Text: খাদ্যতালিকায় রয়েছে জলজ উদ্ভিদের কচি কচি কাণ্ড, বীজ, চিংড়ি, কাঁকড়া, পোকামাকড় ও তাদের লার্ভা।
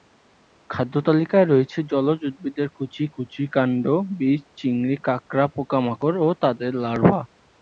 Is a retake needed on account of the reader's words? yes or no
no